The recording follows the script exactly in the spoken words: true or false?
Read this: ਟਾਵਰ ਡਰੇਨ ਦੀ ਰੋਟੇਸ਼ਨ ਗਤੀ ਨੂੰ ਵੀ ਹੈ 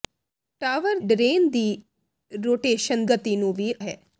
true